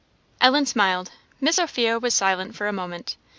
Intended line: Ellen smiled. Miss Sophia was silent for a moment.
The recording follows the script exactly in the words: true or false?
true